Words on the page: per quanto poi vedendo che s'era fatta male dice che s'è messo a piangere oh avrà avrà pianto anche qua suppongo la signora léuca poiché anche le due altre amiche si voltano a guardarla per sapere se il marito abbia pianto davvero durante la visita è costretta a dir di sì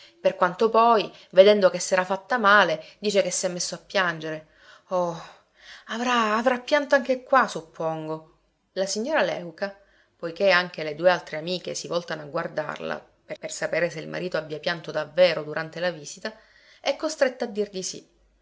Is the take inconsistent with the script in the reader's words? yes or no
yes